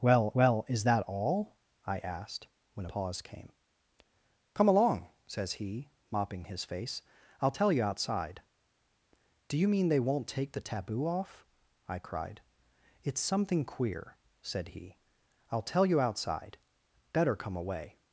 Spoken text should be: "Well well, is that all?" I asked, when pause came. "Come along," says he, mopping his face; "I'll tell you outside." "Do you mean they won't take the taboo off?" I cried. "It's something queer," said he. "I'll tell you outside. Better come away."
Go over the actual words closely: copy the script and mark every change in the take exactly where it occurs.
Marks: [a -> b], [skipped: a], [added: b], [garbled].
"Well well, is that all?" I asked, when pause came. "Come along," says he, mopping his face; "I'll tell you outside." "Do you mean they won't take the taboo off?" I cried. "It's something queer," said he. "I'll tell you outside. Better come away."